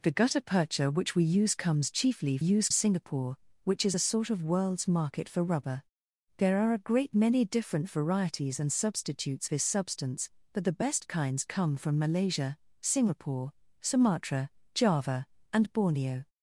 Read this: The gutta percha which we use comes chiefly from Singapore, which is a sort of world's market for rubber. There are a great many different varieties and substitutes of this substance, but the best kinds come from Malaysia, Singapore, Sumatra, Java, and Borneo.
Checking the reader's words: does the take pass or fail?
fail